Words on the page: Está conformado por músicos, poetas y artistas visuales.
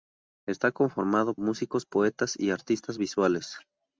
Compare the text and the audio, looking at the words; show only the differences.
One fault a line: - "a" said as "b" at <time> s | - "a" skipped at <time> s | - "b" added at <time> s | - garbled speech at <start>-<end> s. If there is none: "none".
- "por" skipped at 1.4 s